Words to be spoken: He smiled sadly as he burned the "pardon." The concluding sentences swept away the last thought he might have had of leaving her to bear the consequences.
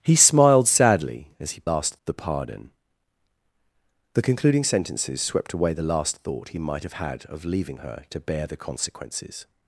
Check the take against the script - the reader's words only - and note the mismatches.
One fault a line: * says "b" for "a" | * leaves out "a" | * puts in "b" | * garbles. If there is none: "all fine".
* says "last" for "burned"